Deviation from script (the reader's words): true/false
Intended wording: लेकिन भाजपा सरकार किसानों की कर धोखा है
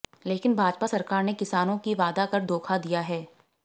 true